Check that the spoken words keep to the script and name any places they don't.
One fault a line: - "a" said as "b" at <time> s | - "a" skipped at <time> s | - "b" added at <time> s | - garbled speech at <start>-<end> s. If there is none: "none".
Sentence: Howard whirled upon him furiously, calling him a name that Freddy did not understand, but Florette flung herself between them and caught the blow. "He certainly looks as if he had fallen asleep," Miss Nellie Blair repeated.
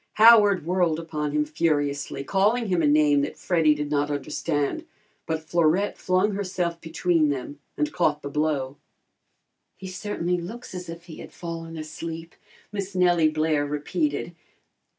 none